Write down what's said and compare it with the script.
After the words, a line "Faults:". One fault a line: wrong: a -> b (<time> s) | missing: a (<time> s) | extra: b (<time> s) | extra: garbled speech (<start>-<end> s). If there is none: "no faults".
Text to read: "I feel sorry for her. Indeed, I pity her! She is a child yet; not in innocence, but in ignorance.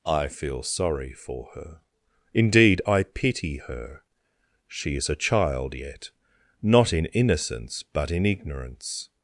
"I feel sorry for her. Indeed, I pity her! She is a child yet; not in innocence, but in ignorance.
Faults:
no faults